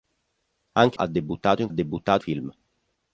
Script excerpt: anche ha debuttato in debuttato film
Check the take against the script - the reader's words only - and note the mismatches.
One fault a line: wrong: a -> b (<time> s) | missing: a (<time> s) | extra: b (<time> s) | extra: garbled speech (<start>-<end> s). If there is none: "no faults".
no faults